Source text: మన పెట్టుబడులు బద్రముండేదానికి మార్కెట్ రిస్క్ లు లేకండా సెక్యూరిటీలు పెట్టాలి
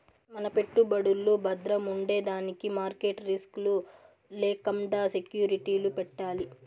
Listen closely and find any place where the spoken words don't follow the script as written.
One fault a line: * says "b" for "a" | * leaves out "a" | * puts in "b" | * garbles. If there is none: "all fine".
all fine